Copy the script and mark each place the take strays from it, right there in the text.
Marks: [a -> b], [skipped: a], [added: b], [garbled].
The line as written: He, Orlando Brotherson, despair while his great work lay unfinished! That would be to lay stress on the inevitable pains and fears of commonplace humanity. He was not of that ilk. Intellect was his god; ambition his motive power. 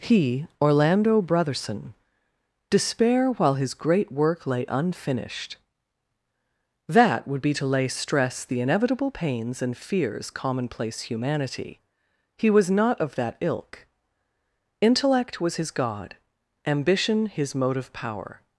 He, Orlando Brotherson, despair while his great work lay unfinished! That would be to lay stress [skipped: on] the inevitable pains and fears [skipped: of] commonplace humanity. He was not of that ilk. Intellect was his god; ambition his motive power.